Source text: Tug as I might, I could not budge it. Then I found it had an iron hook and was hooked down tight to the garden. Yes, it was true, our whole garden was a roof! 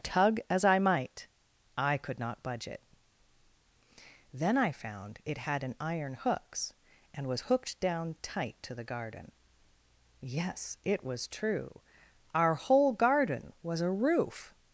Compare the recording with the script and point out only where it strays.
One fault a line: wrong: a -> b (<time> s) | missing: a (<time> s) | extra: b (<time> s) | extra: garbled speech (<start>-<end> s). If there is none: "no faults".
wrong: hook -> hooks (6.1 s)